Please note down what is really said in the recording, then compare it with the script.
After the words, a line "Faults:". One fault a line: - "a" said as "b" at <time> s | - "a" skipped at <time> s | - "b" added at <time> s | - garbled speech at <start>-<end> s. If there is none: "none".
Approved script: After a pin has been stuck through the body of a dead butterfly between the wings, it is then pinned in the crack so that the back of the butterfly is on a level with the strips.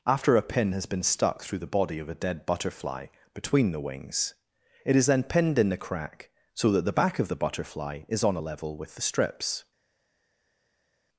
After a pin has been stuck through the body of a dead butterfly between the wings, it is then pinned in the crack so that the back of the butterfly is on a level with the strips.
Faults:
none